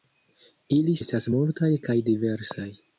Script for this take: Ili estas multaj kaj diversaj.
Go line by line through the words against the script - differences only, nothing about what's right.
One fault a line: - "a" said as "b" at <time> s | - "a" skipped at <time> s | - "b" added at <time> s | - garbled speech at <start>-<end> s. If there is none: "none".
none